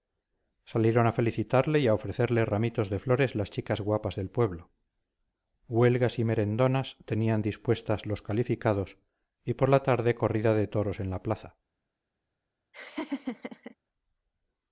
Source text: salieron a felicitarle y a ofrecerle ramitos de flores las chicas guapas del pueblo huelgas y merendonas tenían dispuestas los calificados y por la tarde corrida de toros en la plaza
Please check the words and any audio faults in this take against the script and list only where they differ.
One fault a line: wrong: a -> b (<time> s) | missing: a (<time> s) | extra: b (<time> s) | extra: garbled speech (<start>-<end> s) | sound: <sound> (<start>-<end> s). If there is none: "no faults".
sound: laugh (12.7-13.8 s)